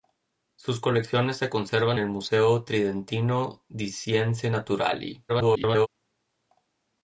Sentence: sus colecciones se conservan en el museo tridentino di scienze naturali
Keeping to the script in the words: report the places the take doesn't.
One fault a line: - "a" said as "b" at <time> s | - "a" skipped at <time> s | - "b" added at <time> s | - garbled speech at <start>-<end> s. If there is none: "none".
- "en" skipped at 2.0 s
- garbled speech at 5.3-5.9 s